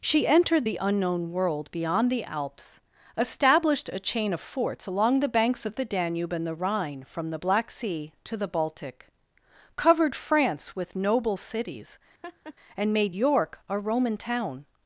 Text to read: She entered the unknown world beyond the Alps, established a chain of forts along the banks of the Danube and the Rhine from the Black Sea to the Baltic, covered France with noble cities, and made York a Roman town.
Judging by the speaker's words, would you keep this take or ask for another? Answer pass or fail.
pass